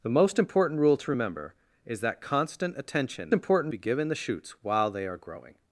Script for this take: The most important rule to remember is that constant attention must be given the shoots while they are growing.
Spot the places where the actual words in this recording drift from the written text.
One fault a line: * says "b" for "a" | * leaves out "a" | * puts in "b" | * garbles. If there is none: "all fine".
* says "important" for "must"